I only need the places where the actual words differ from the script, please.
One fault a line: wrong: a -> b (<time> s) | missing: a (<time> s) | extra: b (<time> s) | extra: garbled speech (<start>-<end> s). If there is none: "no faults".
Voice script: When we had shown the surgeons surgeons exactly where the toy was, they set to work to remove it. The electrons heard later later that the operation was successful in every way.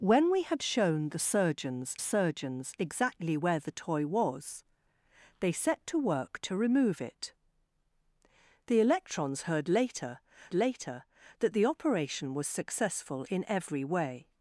no faults